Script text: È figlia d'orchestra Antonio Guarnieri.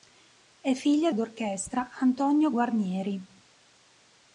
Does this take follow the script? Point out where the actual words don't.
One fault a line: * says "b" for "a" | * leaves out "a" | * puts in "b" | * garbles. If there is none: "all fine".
all fine